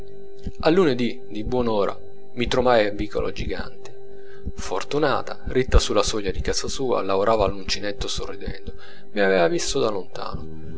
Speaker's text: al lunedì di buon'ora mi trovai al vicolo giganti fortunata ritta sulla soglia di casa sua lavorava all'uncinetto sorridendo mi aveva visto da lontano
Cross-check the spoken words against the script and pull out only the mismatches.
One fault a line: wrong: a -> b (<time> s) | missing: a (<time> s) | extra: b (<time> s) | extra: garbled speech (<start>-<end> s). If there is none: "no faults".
no faults